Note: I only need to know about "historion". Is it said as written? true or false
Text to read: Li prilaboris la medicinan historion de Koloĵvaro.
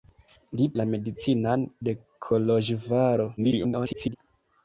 false